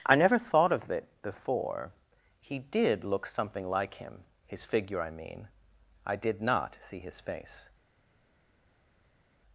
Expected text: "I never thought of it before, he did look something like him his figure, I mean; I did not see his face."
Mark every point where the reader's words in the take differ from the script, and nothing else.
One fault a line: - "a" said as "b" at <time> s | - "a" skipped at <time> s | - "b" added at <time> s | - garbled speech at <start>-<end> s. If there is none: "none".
none